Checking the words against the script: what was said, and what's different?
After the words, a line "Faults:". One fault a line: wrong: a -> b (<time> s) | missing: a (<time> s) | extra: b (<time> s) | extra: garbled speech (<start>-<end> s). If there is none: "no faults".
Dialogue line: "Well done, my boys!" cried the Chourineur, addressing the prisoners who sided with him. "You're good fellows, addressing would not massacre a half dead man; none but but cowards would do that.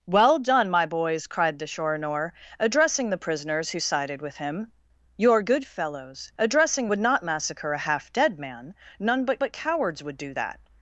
"Well done, my boys!" cried the Chourineur, addressing the prisoners who sided with him. "You're good fellows, addressing would not massacre a half dead man; none but but cowards would do that.
Faults:
no faults